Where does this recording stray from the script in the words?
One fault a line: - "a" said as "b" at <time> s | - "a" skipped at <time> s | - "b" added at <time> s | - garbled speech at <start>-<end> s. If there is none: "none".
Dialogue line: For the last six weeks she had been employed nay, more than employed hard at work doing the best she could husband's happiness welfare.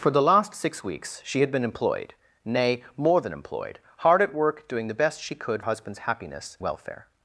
none